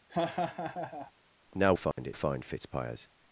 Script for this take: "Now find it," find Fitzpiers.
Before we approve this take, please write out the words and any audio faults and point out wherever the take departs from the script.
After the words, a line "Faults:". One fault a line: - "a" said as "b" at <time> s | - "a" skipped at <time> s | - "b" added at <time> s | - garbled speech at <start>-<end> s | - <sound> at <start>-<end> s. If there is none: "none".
"Now find it," find Fitzpiers.
Faults:
- laugh at 0.1-1.1 s
- dropout at 1.9-2.0 s